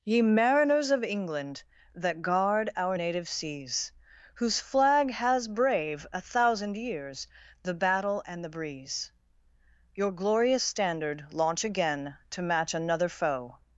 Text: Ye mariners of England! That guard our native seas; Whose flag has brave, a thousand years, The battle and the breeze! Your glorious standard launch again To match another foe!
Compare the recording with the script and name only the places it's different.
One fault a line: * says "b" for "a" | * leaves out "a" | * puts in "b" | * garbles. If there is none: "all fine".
all fine